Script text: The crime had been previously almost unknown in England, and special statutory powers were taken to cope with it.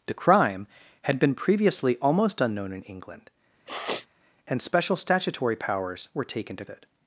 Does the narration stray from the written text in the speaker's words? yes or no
yes